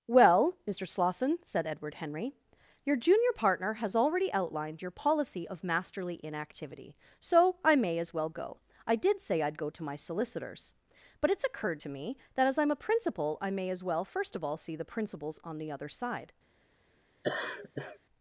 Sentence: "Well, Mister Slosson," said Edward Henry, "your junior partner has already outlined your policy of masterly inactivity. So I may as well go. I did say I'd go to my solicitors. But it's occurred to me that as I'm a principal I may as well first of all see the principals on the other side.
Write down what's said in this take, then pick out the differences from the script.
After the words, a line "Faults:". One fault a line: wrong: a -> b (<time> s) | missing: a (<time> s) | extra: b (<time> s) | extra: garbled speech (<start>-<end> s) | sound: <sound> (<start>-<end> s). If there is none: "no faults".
"Well, Mister Slosson," said Edward Henry, "your junior partner has already outlined your policy of masterly inactivity. So I may as well go. I did say I'd go to my solicitors. But it's occurred to me that as I'm a principal I may as well first of all see the principals on the other side.
Faults:
sound: laugh (17.2-18.0 s)